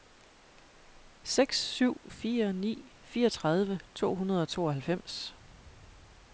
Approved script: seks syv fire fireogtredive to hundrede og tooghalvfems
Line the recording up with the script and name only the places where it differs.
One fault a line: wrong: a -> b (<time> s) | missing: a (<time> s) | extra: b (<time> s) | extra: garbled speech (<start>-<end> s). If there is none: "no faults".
extra: ni (2.5 s)